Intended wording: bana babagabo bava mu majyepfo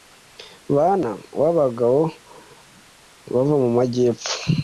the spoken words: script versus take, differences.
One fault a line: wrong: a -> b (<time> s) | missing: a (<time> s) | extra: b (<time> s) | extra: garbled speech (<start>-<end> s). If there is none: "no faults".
no faults